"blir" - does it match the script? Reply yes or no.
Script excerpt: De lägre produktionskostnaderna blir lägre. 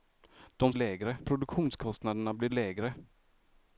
yes